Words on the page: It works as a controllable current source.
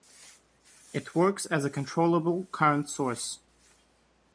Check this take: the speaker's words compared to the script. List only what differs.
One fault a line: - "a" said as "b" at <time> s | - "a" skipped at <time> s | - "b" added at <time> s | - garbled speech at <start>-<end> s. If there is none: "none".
none